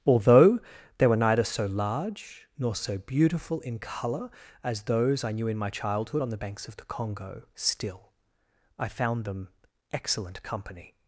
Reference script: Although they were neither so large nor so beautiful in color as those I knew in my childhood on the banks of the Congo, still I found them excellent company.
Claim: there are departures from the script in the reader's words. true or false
false